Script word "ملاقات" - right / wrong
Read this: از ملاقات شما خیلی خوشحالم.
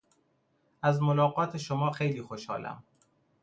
right